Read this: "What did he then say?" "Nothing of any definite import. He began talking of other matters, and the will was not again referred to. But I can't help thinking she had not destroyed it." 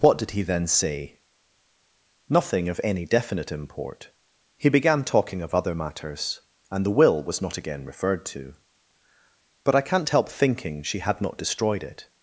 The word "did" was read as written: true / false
true